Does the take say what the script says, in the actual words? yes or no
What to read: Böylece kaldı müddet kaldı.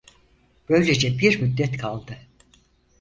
no